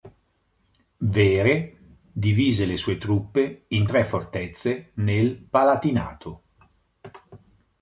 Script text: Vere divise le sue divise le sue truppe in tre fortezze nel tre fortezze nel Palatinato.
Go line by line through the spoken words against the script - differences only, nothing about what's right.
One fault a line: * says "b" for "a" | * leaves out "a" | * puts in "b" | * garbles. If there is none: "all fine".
* leaves out "divise le sue"
* leaves out "tre fortezze nel"